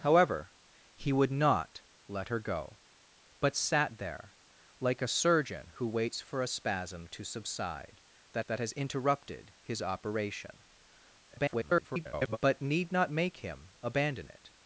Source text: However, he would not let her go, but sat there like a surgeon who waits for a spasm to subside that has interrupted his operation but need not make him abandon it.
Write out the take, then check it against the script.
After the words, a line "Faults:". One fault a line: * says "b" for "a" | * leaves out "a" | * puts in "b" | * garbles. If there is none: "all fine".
However, he would not let her go, but sat there like a surgeon who waits for a spasm to subside that that has interrupted his operation [garbled] but need not make him abandon it.
Faults:
* puts in "that"
* garbles